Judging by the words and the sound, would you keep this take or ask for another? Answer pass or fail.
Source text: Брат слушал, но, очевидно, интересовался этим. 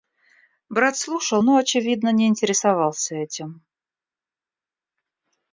fail